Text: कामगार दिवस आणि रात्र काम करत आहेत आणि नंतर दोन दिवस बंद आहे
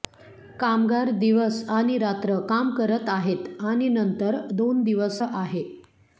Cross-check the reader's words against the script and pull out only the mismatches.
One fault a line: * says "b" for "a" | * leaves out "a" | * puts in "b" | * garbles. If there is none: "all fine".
* leaves out "बंद"